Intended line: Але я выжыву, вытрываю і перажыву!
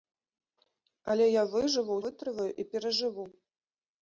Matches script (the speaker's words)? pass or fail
pass